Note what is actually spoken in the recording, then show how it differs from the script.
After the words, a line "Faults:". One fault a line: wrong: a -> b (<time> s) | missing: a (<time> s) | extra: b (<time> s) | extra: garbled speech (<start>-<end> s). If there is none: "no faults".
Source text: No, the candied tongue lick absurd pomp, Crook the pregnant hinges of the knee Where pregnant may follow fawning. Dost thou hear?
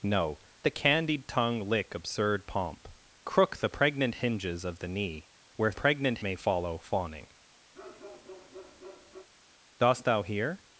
No, the candied tongue lick absurd pomp, Crook the pregnant hinges of the knee Where pregnant may follow fawning. Dost thou hear?
Faults:
no faults